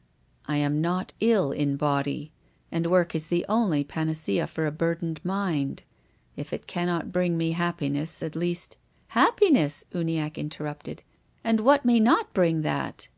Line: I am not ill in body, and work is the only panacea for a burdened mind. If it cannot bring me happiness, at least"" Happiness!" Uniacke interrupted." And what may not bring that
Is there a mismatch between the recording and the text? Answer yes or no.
no